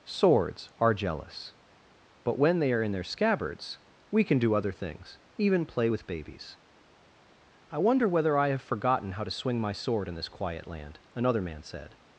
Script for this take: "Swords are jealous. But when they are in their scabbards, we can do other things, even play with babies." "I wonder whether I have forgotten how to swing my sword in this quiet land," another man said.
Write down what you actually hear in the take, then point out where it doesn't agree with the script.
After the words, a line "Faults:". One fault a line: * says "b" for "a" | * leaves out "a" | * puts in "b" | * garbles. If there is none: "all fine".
"Swords are jealous. But when they are in their scabbards, we can do other things, even play with babies." "I wonder whether I have forgotten how to swing my sword in this quiet land," another man said.
Faults:
all fine